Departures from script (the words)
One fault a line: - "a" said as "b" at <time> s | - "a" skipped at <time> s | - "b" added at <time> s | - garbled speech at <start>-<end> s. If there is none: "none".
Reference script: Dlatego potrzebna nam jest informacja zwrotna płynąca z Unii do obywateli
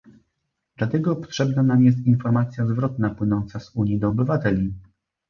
none